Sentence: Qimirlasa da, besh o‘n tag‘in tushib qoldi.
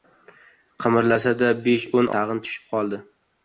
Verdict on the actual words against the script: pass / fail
pass